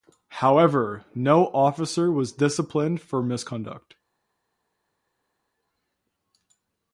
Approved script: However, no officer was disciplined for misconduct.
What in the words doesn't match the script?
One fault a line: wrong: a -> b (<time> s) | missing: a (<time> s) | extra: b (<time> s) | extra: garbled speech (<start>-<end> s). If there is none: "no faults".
no faults